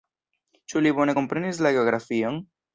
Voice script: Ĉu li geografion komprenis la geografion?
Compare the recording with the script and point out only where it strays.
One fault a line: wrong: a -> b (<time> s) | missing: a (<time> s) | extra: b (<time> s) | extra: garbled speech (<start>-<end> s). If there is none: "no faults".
wrong: geografion -> bone (1.0 s)